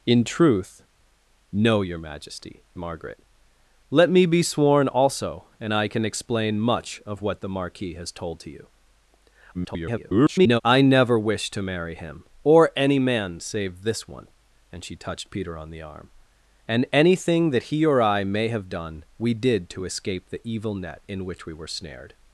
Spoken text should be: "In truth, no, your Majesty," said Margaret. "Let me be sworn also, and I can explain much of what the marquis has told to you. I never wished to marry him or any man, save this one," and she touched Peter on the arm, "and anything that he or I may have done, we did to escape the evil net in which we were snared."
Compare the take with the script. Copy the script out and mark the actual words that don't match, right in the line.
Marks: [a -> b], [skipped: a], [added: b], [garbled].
"In truth, no, your Majesty," [skipped: said] Margaret. "Let me be sworn also, and I can explain much of what the marquis has told to you. [garbled] I never wished to marry him or any man, save this one," and she touched Peter on the arm, "and anything that he or I may have done, we did to escape the evil net in which we were snared."